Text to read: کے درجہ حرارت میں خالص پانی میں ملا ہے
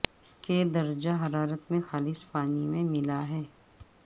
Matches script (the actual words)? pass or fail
pass